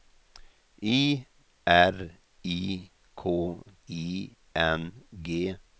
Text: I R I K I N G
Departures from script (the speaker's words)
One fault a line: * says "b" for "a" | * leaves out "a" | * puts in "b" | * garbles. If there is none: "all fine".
all fine